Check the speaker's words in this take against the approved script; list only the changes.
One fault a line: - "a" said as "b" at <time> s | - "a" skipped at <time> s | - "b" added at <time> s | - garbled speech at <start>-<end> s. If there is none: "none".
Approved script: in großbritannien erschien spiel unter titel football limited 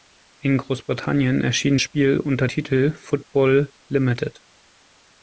none